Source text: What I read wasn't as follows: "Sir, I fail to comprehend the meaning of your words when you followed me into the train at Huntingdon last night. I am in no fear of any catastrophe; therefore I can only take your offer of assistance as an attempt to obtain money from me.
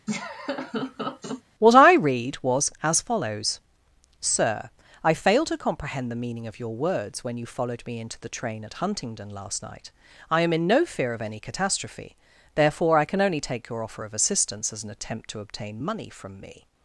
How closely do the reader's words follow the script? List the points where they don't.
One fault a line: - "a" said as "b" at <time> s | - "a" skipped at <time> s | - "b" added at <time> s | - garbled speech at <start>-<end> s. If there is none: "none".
- "wasn't" said as "was" at 2.4 s